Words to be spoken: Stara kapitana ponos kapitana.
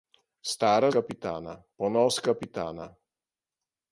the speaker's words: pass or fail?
pass